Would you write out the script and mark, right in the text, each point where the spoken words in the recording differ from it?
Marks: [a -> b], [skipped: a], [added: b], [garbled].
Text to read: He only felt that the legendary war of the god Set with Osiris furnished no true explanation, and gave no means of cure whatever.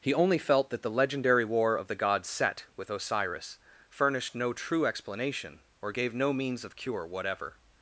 He only felt that the legendary war of the god Set with Osiris furnished no true explanation, [and -> or] gave no means of cure whatever.